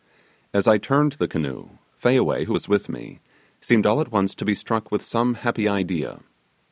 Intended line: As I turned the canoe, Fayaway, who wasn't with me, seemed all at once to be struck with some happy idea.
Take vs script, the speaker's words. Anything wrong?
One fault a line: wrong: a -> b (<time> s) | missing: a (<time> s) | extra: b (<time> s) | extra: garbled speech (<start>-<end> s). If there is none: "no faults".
wrong: wasn't -> was (2.5 s)